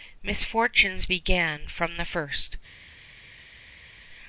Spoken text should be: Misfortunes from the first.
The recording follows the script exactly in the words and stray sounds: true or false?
false